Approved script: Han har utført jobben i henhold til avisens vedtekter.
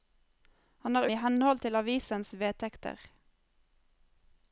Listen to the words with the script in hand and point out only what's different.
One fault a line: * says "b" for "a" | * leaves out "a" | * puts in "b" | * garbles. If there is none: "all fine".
* leaves out "utført jobben"